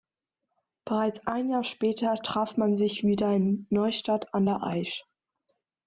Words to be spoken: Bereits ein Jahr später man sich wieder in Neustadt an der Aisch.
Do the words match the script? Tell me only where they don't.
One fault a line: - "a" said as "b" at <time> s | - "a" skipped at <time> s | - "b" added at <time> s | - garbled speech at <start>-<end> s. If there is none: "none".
- "traf" added at 2.1 s